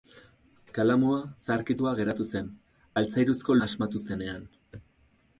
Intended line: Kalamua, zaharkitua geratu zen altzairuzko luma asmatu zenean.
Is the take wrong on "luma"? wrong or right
wrong